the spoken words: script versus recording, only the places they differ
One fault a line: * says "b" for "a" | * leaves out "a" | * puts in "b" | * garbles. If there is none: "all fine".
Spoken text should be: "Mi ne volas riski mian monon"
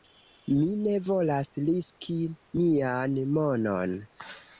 all fine